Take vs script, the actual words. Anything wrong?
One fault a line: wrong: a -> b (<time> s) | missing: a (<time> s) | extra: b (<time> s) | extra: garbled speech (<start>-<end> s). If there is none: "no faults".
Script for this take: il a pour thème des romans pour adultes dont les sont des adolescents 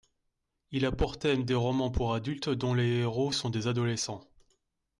extra: héros (3.0 s)